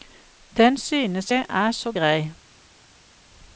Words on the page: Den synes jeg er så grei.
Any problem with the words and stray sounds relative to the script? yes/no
no